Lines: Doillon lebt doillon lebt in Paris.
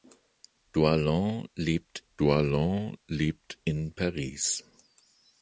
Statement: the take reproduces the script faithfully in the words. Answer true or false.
true